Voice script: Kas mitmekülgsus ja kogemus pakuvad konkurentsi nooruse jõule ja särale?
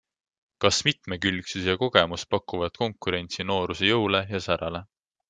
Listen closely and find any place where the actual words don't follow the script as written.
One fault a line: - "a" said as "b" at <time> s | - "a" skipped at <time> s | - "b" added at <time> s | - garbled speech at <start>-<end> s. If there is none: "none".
none